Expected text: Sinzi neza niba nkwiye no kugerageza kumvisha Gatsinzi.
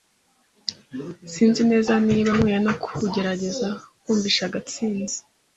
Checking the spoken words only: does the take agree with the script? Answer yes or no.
yes